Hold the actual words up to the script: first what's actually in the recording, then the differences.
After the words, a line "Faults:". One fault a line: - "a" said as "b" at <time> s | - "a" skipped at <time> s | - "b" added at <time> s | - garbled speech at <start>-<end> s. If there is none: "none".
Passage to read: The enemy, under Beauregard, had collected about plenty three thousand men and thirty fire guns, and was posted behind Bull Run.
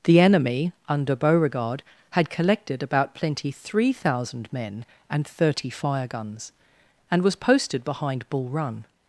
The enemy, under Beauregard, had collected about plenty three thousand men and thirty fire guns, and was posted behind Bull Run.
Faults:
none